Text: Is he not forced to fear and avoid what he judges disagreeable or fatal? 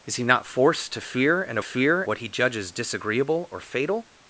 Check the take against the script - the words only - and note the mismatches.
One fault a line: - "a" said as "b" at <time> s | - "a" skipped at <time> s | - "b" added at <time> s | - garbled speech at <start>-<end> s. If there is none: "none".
- "avoid" said as "fear" at 1.6 s